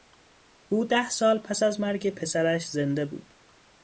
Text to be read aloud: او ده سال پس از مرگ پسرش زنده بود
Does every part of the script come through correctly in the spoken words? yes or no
yes